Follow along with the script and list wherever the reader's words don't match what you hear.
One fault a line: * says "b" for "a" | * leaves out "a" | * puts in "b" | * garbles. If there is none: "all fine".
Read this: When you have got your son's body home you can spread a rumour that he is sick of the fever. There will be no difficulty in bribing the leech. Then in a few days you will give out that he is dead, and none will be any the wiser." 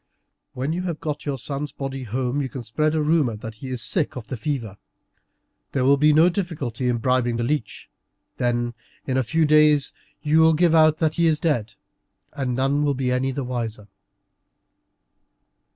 all fine